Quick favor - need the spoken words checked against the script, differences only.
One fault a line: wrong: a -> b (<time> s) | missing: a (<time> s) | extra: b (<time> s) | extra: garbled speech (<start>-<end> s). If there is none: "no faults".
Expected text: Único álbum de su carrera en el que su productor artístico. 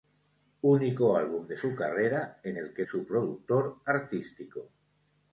no faults